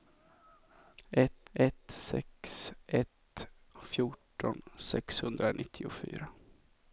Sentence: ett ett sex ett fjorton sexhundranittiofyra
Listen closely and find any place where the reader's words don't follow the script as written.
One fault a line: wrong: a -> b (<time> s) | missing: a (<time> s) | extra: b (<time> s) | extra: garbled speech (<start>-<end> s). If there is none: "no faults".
no faults